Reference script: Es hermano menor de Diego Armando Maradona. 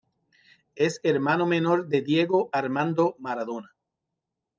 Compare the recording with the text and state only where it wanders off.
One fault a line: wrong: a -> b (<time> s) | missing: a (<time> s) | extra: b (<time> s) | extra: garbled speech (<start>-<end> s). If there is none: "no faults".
no faults